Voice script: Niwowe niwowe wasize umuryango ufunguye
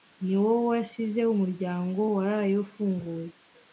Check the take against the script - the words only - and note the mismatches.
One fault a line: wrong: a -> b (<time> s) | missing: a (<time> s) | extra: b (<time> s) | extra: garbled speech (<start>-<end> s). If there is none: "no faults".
missing: niwowe (0.6 s)
extra: waraye (2.2 s)